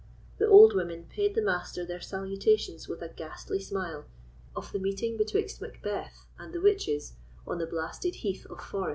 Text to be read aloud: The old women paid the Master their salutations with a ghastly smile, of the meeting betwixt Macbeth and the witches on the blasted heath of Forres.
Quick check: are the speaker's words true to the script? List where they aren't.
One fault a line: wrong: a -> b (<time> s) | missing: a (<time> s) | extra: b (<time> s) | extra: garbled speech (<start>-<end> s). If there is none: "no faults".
no faults